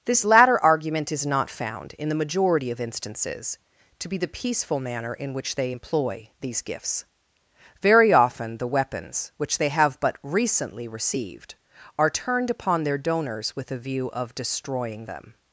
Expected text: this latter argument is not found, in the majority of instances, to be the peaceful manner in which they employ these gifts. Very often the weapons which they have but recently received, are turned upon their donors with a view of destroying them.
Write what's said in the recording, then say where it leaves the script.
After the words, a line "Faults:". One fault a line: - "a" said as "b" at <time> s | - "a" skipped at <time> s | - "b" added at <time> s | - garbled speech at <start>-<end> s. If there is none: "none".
this latter argument is not found, in the majority of instances, to be the peaceful manner in which they employ these gifts. Very often the weapons which they have but recently received, are turned upon their donors with a view of destroying them.
Faults:
none